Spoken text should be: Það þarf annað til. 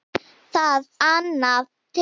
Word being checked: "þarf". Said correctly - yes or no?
no